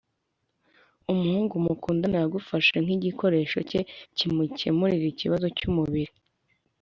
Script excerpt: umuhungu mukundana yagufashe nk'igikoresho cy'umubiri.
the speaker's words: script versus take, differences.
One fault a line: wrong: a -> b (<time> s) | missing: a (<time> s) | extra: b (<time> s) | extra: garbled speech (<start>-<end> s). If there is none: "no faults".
extra: cye kimukemurira ikibazo (3.7 s)